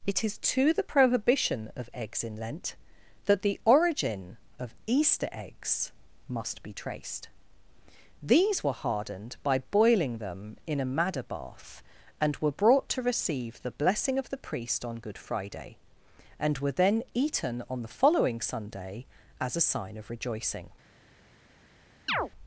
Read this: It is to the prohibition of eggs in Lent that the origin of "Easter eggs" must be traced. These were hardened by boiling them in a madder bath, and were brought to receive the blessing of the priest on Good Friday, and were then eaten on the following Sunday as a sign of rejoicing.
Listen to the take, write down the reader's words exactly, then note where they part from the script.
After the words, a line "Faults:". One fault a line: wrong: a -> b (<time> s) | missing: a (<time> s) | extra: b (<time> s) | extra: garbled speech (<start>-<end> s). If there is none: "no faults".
It is to the prohibition of eggs in Lent that the origin of "Easter eggs" must be traced. These were hardened by boiling them in a madder bath, and were brought to receive the blessing of the priest on Good Friday, and were then eaten on the following Sunday as a sign of rejoicing.
Faults:
no faults